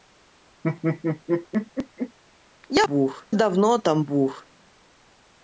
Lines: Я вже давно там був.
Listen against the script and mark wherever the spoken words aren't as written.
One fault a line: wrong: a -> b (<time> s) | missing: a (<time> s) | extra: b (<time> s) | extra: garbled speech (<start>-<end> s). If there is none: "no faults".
wrong: вже -> був (2.8 s)